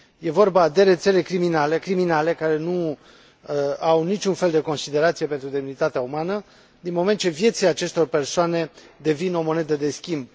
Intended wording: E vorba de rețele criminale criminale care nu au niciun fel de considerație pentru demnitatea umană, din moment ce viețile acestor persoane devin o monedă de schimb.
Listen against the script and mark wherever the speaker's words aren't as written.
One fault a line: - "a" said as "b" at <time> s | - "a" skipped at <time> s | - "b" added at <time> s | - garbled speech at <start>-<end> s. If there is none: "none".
none